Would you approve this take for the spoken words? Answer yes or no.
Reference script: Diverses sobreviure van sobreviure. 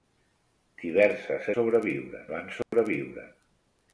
yes